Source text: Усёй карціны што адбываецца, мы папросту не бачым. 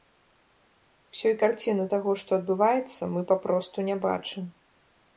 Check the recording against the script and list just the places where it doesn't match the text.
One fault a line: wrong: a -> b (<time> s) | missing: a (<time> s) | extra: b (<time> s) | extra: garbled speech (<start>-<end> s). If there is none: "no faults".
extra: таго (1.9 s)